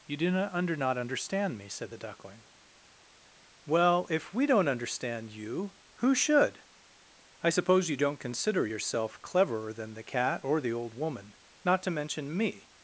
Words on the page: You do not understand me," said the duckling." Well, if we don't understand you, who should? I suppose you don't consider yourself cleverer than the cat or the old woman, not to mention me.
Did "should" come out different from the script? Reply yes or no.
no